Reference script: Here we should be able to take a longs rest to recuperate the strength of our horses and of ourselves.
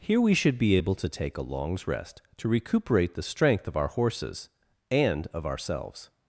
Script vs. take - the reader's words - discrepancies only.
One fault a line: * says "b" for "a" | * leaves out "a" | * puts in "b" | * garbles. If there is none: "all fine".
all fine